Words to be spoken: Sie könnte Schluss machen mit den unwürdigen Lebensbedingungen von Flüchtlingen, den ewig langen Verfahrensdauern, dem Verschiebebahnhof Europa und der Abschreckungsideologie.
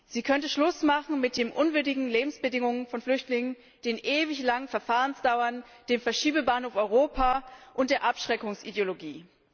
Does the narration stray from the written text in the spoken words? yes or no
no